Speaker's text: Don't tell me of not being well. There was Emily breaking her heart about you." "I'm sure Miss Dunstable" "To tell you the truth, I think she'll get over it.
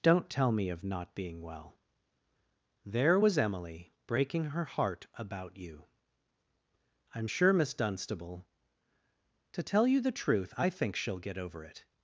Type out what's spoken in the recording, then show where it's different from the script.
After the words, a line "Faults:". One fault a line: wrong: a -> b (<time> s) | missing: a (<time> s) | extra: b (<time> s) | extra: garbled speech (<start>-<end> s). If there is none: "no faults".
Don't tell me of not being well. There was Emily breaking her heart about you." "I'm sure Miss Dunstable" "To tell you the truth, I think she'll get over it.
Faults:
no faults